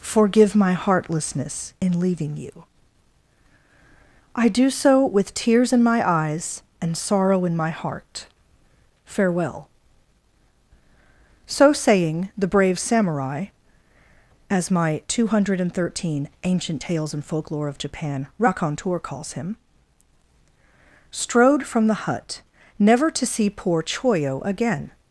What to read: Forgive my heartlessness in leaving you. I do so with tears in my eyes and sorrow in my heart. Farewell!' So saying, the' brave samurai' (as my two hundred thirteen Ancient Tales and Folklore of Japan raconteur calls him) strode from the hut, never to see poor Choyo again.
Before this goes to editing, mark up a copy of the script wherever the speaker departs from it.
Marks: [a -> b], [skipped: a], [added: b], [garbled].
Forgive my heartlessness in leaving you. I do so with tears in my eyes and sorrow in my heart. Farewell!' So saying, the' brave samurai' (as my two hundred thirteen Ancient Tales and Folklore of Japan raconteur calls him) strode from the hut, never to see poor Choyo again.